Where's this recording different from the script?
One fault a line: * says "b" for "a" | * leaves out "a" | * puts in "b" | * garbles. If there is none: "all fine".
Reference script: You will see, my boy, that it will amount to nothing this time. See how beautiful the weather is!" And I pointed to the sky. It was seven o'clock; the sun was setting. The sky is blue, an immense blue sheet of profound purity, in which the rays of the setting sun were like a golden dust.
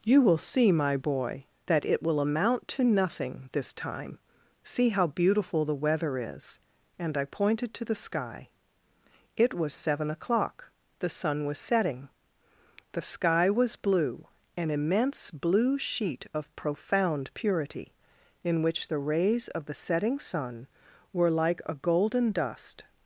* says "was" for "is"